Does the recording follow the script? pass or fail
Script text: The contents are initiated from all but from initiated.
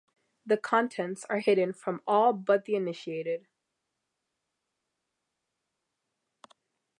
fail